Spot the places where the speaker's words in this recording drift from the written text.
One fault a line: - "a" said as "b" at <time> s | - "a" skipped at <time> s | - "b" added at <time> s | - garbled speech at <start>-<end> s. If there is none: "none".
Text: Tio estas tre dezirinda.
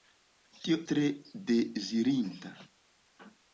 - "estas" skipped at 0.8 s